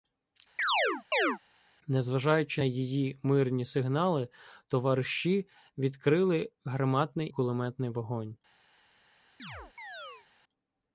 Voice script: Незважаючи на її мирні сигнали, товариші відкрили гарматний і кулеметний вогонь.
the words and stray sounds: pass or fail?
fail